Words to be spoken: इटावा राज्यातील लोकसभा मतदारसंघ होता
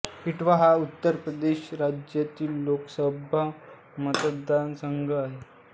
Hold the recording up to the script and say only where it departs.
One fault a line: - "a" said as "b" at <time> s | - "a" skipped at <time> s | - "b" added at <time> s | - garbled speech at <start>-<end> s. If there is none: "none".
- "हा उत्तर प्रदेश" added at 0.5 s
- "होता" said as "आहे" at 5.1 s